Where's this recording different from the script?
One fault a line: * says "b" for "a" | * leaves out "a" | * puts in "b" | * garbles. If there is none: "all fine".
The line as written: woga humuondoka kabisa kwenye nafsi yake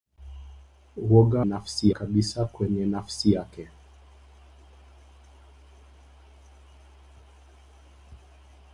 * says "nafsi" for "humuondoka"